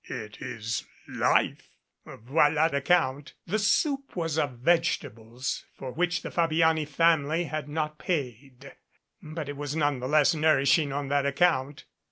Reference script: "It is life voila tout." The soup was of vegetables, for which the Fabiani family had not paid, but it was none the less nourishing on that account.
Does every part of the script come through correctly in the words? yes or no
no